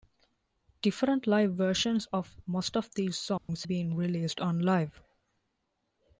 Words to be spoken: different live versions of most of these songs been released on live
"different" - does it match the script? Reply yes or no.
yes